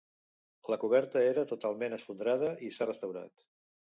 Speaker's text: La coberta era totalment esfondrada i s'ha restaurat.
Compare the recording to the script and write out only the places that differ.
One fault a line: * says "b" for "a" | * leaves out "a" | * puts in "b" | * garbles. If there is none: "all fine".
all fine